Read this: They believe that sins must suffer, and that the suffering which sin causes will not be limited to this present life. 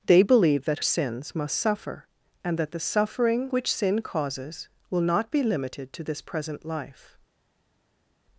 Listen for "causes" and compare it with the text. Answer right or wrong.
right